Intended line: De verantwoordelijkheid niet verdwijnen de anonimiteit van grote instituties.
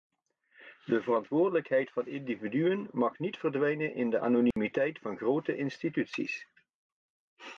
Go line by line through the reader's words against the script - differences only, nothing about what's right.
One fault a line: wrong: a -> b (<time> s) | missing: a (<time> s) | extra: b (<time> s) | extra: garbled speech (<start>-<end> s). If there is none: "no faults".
extra: van individuen mag (1.9 s)
extra: in (3.9 s)